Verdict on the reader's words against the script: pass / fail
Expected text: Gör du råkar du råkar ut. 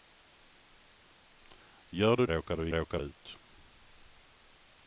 pass